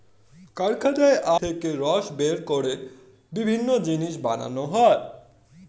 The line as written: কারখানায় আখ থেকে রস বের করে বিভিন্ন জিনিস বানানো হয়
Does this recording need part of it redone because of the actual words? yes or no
yes